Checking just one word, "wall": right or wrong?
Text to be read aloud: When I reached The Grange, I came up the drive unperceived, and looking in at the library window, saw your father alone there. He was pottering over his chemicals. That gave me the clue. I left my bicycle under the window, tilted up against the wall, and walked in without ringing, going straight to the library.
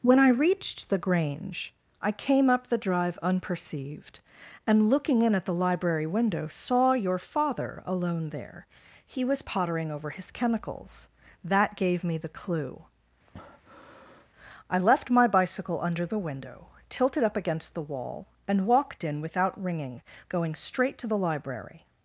right